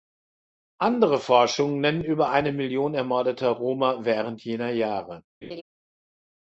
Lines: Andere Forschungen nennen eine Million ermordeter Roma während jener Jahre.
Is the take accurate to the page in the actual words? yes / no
no